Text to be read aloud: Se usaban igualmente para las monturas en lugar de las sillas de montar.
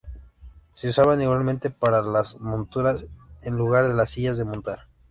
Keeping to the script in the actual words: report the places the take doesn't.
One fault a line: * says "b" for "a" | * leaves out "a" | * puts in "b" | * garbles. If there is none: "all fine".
all fine